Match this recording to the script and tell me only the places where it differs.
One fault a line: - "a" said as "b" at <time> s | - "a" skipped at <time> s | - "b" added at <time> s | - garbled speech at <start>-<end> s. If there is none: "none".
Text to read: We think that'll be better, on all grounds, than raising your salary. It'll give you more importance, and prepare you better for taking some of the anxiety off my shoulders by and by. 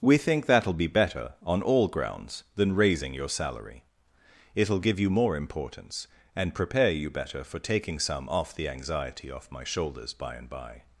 - "of" said as "off" at 8.3 s